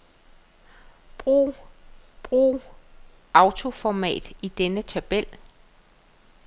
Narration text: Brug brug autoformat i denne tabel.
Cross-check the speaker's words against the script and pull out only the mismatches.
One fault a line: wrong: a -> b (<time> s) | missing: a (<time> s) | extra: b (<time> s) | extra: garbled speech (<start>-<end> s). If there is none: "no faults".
no faults